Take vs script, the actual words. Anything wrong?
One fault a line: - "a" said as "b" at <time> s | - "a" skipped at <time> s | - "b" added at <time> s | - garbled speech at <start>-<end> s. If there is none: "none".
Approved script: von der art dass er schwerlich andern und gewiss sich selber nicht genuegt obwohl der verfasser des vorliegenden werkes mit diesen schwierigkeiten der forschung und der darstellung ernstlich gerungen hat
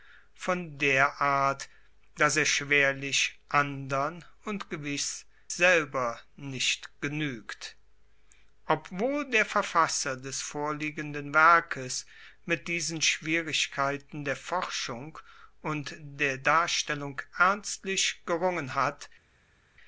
- "sich" skipped at 5.3 s